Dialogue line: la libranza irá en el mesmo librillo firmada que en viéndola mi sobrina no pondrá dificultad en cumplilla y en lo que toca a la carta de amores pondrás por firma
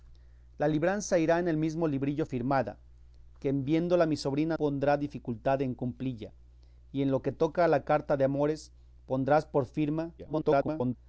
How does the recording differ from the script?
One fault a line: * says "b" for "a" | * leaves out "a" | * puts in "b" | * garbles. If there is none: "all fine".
* leaves out "no"
* garbles